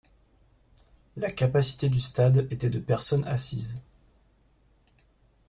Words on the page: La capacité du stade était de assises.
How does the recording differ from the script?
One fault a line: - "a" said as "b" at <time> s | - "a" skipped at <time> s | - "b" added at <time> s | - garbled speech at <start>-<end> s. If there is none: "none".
- "personnes" added at 2.8 s